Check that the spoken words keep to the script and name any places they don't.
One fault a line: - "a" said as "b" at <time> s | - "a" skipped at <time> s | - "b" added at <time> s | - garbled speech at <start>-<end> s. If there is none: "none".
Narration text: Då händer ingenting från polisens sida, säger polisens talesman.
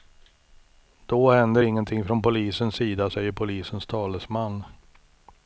none